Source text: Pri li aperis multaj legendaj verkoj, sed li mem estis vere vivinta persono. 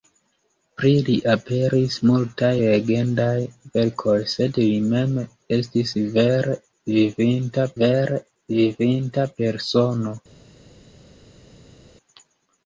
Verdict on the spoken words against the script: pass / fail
fail